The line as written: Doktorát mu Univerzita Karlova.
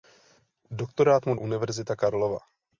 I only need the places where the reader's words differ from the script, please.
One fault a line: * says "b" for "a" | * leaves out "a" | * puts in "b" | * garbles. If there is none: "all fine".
all fine